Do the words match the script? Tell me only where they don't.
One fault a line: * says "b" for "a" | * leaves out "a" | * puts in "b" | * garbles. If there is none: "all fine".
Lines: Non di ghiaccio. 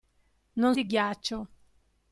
all fine